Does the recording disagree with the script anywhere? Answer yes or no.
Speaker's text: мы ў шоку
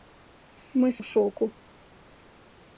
no